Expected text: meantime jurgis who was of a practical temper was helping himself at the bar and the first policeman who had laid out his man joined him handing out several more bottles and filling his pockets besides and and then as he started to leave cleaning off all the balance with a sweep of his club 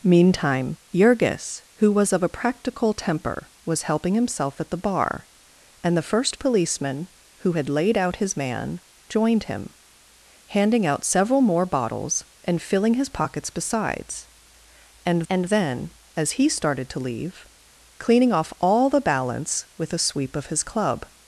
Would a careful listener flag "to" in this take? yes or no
no